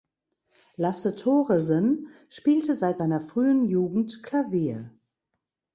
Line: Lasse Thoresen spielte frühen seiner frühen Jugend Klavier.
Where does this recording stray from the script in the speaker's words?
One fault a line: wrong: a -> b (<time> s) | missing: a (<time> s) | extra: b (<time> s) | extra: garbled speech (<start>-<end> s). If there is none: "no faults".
wrong: frühen -> seit (2.8 s)